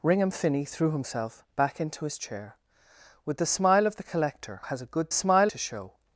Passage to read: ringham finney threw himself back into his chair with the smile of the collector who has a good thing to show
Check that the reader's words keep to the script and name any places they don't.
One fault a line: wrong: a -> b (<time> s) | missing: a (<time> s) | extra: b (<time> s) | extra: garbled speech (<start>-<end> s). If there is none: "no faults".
missing: who (4.6 s)
wrong: thing -> smile (5.1 s)